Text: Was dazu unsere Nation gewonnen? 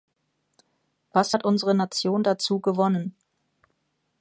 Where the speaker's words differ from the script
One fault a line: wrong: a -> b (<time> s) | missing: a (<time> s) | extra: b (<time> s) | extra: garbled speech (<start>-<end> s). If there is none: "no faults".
wrong: dazu -> hat (1.3 s)
extra: dazu (2.2 s)